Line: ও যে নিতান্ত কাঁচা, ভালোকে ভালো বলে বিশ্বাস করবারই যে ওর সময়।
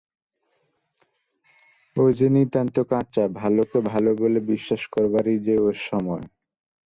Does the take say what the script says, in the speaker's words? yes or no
yes